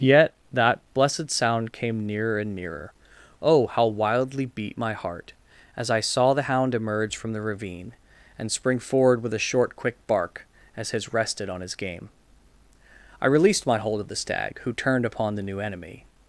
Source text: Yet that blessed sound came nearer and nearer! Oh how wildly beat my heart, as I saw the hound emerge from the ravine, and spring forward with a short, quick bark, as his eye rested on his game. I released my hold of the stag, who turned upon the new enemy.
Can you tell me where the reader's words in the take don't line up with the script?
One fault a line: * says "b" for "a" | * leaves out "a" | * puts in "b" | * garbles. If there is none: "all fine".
* leaves out "eye"